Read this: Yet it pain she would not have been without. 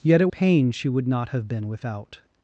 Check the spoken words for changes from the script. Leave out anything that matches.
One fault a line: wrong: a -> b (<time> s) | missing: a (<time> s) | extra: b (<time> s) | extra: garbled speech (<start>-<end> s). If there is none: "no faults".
no faults